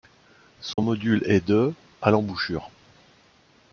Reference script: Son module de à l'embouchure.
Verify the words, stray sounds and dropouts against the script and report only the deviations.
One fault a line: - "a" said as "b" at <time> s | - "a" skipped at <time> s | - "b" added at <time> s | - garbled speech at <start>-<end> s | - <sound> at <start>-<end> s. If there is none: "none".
- dropout at 0.7-0.8 s
- "est" added at 1.2 s